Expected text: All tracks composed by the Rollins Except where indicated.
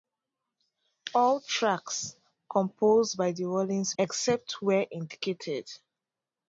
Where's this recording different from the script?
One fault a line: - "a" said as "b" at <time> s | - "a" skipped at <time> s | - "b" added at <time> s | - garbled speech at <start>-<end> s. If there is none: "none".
none